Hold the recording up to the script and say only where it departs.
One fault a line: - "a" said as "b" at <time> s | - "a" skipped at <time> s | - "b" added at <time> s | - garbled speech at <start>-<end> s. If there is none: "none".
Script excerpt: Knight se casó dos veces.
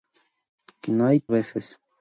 - "se casó dos" skipped at 1.3 s